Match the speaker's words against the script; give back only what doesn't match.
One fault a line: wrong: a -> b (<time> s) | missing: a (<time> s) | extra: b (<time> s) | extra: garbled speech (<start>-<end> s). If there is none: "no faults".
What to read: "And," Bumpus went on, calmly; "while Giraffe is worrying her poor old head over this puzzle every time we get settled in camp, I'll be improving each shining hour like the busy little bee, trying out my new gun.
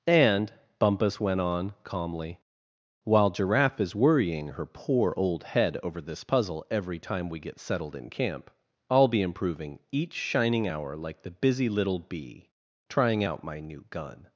no faults